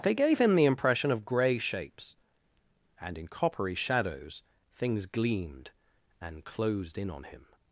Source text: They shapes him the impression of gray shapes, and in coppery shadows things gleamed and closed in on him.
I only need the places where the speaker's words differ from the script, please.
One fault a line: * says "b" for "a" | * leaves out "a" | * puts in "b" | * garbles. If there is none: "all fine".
* says "gave" for "shapes"